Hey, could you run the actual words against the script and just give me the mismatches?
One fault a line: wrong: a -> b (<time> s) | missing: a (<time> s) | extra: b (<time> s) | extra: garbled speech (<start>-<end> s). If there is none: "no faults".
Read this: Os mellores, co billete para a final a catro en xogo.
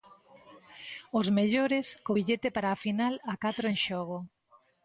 no faults